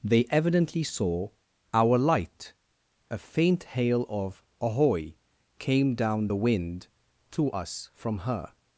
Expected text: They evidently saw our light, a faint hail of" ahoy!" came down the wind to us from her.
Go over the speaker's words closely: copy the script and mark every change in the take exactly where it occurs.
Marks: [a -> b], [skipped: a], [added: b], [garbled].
They evidently saw our light, a faint hail of" ahoy!" came down the wind to us from her.